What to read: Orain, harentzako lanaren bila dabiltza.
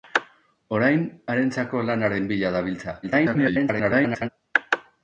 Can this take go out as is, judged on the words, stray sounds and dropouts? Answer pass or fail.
fail